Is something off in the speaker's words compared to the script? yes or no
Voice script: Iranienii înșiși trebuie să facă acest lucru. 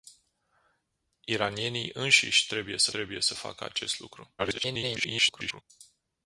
yes